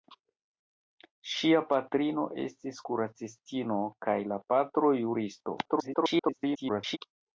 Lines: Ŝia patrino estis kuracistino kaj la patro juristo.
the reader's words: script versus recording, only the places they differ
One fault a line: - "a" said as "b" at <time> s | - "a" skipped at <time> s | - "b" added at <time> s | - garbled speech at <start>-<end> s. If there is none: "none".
- garbled speech at 5.7-7.0 s